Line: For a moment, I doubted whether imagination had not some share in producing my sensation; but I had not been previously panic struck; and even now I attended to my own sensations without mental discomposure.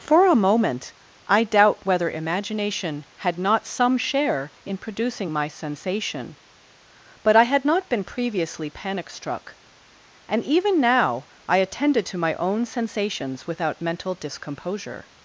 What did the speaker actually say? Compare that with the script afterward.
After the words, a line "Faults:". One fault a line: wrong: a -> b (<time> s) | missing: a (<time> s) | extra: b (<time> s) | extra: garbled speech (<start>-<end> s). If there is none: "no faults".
For a moment, I doubt whether imagination had not some share in producing my sensation; but I had not been previously panic struck; and even now I attended to my own sensations without mental discomposure.
Faults:
wrong: doubted -> doubt (1.4 s)